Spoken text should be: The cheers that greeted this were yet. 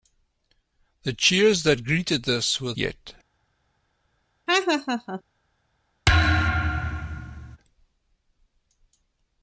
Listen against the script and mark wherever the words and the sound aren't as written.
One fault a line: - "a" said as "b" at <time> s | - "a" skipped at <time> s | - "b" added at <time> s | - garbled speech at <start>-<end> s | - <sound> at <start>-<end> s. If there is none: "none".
- laugh at 4.5-5.2 s
- thud at 6.1-7.6 s